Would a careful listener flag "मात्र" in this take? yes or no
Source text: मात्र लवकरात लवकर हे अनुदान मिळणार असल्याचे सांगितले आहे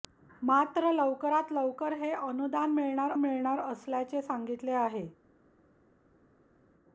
no